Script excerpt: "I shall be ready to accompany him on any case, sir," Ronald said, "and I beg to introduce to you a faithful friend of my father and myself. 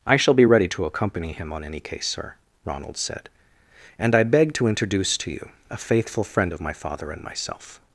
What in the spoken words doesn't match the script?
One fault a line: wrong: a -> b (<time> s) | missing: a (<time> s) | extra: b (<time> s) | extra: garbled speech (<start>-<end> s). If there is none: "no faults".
no faults